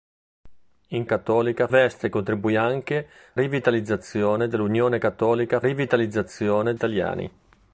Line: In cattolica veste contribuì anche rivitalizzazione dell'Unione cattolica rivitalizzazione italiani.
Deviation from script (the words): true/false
false